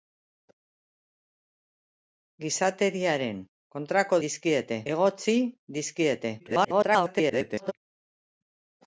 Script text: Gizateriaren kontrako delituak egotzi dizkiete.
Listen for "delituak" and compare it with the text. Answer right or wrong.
wrong